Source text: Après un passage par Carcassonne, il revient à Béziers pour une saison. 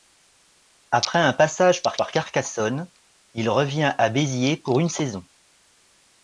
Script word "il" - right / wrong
right